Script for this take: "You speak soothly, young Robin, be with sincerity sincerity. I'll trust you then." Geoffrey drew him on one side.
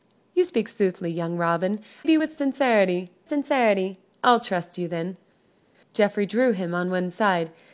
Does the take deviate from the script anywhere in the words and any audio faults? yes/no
no